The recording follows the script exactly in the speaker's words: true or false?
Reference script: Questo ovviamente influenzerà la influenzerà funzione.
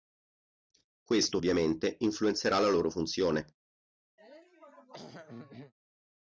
false